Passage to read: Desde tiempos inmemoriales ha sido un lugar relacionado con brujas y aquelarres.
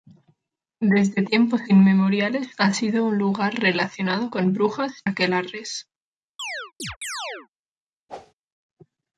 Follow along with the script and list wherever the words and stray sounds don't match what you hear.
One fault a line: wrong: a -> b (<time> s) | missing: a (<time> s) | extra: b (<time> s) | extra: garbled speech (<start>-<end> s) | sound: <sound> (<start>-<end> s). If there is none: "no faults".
missing: y (5.0 s)
sound: chirp (6.4-7.5 s)
sound: whoosh (8.1-8.3 s)